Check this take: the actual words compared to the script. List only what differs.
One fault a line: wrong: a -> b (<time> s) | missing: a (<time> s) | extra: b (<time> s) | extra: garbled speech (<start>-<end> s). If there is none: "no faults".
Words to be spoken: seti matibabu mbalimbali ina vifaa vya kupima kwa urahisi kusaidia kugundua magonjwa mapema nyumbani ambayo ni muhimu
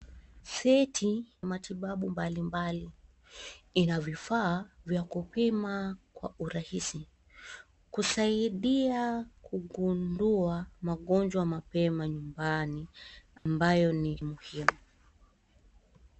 no faults